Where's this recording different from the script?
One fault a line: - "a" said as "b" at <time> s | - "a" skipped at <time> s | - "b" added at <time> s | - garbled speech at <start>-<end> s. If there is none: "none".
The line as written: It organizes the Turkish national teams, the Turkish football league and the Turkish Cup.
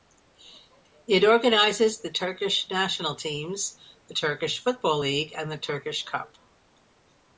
none